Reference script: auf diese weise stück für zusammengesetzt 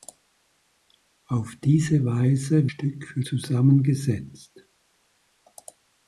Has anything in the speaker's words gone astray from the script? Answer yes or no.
no